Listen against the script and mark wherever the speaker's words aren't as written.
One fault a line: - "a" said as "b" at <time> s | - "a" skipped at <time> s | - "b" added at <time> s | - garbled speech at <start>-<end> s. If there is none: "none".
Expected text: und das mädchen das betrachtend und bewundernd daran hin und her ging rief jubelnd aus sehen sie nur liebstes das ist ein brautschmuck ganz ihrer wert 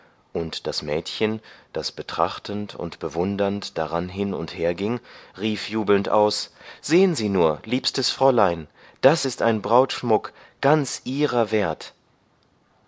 - "fräulein" added at 8.1 s